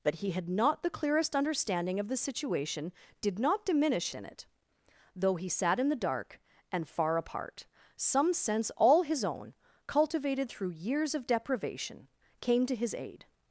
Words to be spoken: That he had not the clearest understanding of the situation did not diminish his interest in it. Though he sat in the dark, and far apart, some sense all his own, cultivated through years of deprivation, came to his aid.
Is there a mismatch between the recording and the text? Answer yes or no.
yes